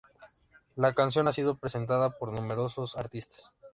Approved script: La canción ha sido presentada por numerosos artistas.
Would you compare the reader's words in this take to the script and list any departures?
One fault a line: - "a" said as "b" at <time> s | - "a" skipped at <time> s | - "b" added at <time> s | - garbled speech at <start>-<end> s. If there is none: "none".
none